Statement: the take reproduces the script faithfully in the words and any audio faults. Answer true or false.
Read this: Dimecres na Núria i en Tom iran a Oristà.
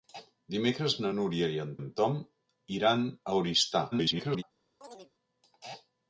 false